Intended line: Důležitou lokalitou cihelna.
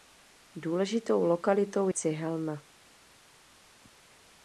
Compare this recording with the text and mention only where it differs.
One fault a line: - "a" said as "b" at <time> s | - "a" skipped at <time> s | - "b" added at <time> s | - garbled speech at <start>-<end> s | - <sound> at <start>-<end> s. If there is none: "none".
none